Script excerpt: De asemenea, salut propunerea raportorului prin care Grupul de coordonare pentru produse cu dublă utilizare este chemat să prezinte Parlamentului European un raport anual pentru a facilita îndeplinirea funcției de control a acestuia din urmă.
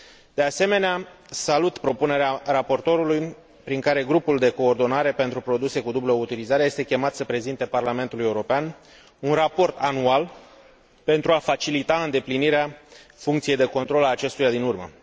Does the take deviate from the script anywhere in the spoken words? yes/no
no